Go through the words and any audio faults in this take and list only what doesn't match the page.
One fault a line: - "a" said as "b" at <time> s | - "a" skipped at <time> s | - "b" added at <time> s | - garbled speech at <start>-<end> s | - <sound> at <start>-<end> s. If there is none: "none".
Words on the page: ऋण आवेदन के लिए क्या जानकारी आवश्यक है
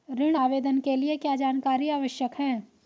none